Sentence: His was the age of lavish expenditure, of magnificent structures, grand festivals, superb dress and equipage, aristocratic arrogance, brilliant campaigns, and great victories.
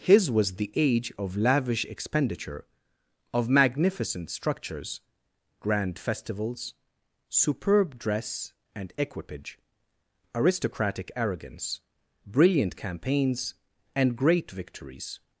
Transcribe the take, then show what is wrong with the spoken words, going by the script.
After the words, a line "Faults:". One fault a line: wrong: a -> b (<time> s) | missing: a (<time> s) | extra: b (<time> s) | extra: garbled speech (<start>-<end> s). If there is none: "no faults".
His was the age of lavish expenditure, of magnificent structures, grand festivals, superb dress and equipage, aristocratic arrogance, brilliant campaigns, and great victories.
Faults:
no faults